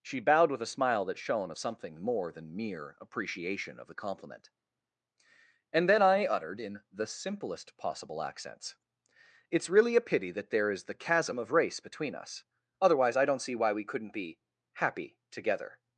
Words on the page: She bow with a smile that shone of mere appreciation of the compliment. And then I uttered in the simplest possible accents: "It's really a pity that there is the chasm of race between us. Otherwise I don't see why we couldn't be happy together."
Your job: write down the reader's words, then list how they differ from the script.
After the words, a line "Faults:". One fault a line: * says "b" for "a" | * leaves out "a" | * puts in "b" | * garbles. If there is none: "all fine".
She bowed with a smile that shone of something more than mere appreciation of the compliment. And then I uttered in the simplest possible accents: "It's really a pity that there is the chasm of race between us. Otherwise I don't see why we couldn't be happy together."
Faults:
* says "bowed" for "bow"
* puts in "something more than"